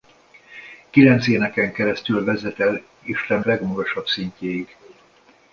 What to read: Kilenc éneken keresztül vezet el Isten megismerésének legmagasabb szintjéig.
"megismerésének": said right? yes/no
no